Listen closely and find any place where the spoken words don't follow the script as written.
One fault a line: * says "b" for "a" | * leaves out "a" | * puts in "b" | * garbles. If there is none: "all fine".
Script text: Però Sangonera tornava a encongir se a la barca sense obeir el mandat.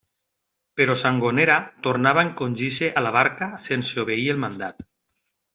all fine